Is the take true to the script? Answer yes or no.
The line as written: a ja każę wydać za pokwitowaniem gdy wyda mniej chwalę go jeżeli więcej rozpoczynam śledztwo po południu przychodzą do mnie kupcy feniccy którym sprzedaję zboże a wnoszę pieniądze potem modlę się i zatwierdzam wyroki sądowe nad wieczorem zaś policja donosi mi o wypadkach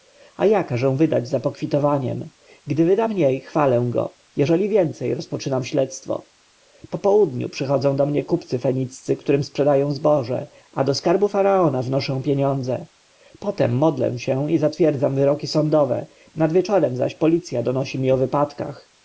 no